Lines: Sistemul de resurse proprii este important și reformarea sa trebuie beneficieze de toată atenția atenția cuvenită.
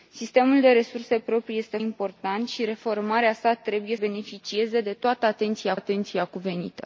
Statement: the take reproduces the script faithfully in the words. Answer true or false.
true